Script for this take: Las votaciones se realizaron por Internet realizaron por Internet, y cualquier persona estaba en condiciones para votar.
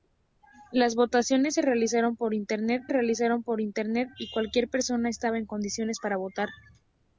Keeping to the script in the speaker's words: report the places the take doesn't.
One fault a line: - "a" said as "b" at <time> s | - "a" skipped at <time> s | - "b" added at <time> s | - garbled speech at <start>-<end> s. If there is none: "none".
none